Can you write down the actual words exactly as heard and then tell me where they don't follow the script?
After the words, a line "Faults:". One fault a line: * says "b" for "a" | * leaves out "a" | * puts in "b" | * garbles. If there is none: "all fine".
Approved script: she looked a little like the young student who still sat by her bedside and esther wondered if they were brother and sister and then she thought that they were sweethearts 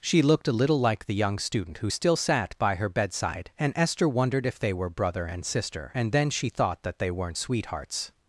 she looked a little like the young student who still sat by her bedside and esther wondered if they were brother and sister and then she thought that they weren't sweethearts
Faults:
* says "weren't" for "were"